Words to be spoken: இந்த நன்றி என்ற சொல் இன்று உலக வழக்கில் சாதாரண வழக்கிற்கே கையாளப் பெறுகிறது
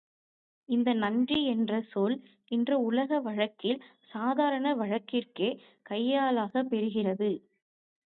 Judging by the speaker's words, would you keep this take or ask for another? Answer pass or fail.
pass